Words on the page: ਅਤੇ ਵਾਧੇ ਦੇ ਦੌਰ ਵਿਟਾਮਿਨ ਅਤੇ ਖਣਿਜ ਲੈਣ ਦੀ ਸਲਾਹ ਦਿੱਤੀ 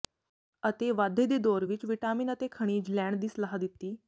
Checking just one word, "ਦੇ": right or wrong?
right